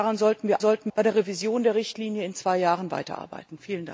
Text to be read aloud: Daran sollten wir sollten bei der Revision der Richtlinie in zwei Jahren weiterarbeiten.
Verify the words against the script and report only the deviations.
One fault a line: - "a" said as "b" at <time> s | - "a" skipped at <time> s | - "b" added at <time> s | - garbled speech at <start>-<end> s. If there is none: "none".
none